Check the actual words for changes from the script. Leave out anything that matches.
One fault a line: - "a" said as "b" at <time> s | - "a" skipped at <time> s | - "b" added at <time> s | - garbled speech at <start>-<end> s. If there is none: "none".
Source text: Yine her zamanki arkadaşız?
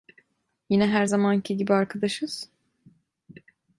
- "gibi" added at 1.6 s